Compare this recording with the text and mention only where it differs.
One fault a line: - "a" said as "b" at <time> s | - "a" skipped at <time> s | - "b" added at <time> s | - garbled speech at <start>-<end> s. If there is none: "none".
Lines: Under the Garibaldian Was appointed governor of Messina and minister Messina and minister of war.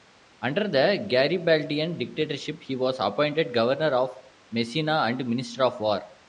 - "Dictatorship he" added at 2.0 s
- "Messina and minister" skipped at 5.6 s